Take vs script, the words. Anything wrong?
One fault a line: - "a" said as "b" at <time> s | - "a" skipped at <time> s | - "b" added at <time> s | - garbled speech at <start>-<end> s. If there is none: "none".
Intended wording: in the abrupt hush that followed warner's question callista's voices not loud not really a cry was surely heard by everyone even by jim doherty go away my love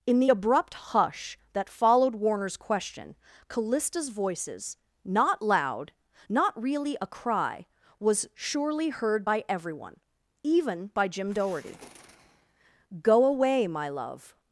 none